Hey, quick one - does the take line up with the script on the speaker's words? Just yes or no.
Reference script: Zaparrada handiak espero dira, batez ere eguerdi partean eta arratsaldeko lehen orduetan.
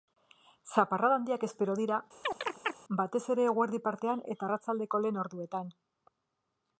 yes